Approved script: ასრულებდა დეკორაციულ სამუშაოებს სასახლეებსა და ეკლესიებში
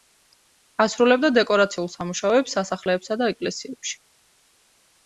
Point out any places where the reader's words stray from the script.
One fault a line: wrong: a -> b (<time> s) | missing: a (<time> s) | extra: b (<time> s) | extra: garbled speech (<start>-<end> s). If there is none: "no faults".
no faults